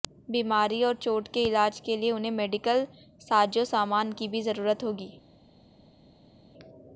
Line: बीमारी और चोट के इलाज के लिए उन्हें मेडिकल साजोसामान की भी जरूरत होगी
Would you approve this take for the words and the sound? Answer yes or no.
yes